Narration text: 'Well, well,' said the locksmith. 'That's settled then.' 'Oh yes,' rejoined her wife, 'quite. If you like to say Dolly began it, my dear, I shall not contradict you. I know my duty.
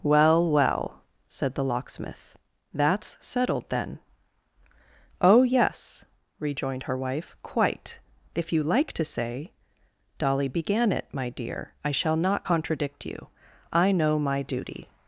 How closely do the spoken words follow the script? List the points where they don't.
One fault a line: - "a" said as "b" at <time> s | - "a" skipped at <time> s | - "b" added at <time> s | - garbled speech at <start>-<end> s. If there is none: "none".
none